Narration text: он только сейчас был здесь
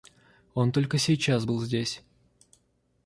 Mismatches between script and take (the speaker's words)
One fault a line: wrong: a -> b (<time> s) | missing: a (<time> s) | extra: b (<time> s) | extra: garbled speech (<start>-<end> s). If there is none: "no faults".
no faults